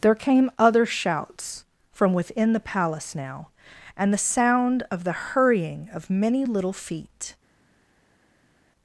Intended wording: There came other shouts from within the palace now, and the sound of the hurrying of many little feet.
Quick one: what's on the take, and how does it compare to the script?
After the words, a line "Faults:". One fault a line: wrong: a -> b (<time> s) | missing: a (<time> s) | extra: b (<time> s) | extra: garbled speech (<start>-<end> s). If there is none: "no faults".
There came other shouts from within the palace now, and the sound of the hurrying of many little feet.
Faults:
no faults